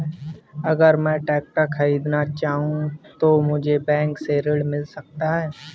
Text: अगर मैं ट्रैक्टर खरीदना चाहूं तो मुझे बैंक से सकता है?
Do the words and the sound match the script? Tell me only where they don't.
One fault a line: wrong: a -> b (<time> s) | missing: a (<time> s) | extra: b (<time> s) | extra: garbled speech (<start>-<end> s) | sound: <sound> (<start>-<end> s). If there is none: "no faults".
extra: ऋण मिल (4.4 s)